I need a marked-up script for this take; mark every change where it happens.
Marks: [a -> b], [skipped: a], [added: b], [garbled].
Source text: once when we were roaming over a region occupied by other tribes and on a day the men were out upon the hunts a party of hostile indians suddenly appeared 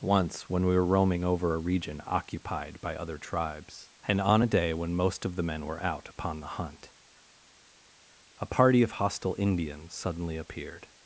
once when we were roaming over a region occupied by other tribes and on a day [added: when most of] the men were out upon the [hunts -> hunt] a party of hostile indians suddenly appeared